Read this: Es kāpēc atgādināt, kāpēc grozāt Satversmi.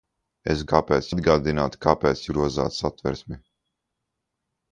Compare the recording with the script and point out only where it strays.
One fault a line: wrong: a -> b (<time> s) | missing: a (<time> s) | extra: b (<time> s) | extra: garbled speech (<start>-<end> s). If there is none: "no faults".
no faults